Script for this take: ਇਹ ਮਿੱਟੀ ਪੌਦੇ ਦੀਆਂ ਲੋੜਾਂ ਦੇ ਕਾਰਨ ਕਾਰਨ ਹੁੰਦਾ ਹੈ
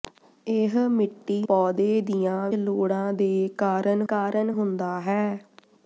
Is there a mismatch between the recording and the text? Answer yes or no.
no